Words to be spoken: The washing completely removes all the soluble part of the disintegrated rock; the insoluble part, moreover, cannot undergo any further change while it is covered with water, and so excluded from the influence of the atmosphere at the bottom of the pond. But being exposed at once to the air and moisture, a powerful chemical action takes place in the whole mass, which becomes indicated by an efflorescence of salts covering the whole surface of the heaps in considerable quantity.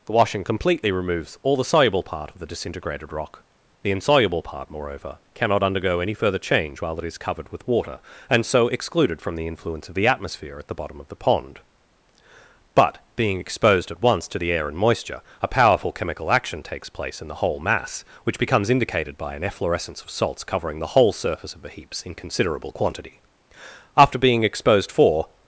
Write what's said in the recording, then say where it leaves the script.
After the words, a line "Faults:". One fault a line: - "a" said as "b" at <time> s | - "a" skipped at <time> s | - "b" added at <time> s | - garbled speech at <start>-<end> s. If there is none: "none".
The washing completely removes all the soluble part of the disintegrated rock; the insoluble part, moreover, cannot undergo any further change while it is covered with water, and so excluded from the influence of the atmosphere at the bottom of the pond. But being exposed at once to the air and moisture, a powerful chemical action takes place in the whole mass, which becomes indicated by an efflorescence of salts covering the whole surface of the heaps in considerable quantity. After being exposed for
Faults:
- "After being exposed for" added at 24.0 s